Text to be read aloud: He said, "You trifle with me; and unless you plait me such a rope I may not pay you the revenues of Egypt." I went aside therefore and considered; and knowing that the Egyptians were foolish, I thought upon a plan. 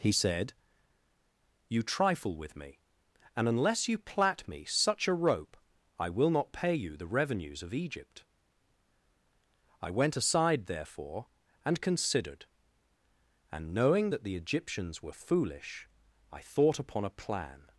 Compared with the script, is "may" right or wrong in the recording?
wrong